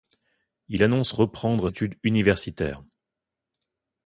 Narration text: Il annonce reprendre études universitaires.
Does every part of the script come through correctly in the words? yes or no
yes